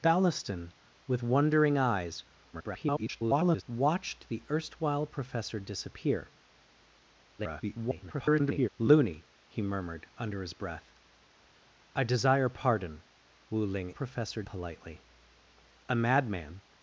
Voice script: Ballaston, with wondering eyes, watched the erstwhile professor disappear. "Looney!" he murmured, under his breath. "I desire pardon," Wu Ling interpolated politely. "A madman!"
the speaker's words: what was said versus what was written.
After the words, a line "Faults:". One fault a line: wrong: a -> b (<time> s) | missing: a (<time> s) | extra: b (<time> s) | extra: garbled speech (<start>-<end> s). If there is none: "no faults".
Ballaston, with wondering eyes, [garbled] watched the erstwhile professor disappear. [garbled] "Looney!" he murmured, under his breath. "I desire pardon," Wu Ling professor politely. "A madman!"
Faults:
extra: garbled speech (2.5-3.6 s)
extra: garbled speech (7.4-8.7 s)
wrong: interpolated -> professor (13.9 s)